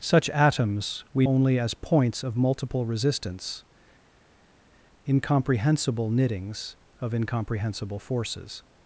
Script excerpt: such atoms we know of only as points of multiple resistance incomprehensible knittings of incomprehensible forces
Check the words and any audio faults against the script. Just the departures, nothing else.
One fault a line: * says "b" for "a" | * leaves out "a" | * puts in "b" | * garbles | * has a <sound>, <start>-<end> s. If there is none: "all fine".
* leaves out "know of"